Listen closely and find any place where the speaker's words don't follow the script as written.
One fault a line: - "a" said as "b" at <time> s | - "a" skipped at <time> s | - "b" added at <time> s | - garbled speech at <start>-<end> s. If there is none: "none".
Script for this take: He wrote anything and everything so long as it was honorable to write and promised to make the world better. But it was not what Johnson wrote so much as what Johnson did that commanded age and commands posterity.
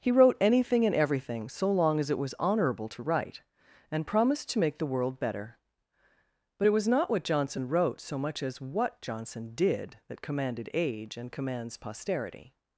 none